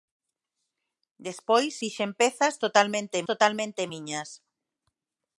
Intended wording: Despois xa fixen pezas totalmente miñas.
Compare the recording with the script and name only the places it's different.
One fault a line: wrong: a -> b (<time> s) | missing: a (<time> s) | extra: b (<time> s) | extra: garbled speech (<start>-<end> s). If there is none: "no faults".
missing: xa (1.7 s)
extra: totalmente (3.3 s)